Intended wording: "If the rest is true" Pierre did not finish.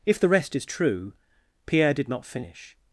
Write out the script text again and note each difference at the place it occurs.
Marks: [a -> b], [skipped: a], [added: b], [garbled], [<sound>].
"If the rest is true" Pierre did not finish.